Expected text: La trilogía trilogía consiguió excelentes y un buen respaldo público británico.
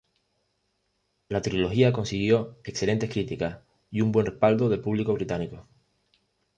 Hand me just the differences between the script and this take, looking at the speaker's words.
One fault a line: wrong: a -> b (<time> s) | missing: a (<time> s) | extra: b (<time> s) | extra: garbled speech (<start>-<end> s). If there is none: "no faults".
missing: trilogía (1.9 s)
extra: críticas (3.1 s)
extra: del (4.7 s)